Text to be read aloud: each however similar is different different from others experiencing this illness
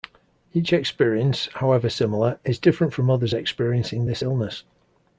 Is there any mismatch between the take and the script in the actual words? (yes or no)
yes